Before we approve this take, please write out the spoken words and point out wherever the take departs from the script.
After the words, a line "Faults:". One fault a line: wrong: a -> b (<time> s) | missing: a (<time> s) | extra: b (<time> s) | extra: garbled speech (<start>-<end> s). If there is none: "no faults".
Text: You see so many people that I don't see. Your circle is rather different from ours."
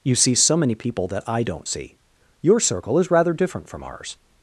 You see so many people that I don't see. Your circle is rather different from ours."
Faults:
no faults